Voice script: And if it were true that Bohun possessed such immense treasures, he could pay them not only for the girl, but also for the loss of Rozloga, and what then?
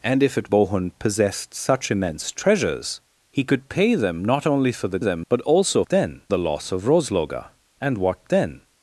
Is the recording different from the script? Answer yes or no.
yes